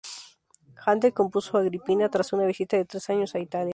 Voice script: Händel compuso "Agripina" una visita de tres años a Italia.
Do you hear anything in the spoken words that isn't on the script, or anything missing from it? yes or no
yes